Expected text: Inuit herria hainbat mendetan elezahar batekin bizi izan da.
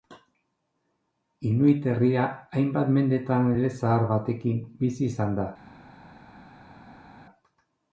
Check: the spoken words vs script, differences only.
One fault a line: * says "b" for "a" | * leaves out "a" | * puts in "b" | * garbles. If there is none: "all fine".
all fine